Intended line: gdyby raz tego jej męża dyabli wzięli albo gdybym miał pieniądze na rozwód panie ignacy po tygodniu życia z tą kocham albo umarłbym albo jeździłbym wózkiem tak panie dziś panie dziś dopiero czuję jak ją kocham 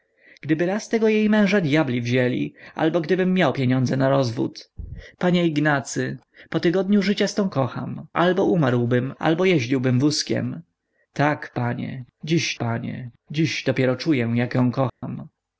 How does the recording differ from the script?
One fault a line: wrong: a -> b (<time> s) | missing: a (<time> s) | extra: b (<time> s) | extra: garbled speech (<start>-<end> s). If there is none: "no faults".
no faults